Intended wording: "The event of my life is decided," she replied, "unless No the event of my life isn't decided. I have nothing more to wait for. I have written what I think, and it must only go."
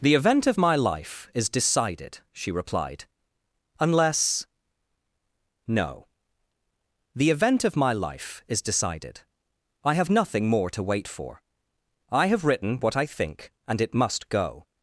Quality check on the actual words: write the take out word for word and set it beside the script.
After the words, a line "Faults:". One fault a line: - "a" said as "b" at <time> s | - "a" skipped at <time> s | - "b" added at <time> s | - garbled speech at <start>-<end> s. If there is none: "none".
"The event of my life is decided," she replied, "unless No the event of my life is decided. I have nothing more to wait for. I have written what I think, and it must go."
Faults:
- "isn't" said as "is" at 8.5 s
- "only" skipped at 14.3 s